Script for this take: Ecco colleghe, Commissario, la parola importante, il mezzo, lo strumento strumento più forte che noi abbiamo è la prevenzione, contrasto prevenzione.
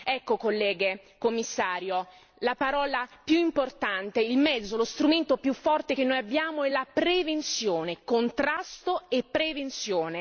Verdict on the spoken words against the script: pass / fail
fail